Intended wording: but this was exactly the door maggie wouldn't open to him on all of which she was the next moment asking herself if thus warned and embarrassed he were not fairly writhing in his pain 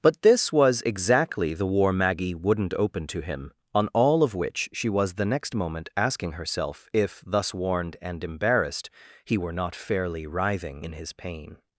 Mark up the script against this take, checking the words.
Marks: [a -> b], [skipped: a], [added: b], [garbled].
but this was exactly the [door -> war] maggie wouldn't open to him on all of which she was the next moment asking herself if thus warned and embarrassed he were not fairly writhing in his pain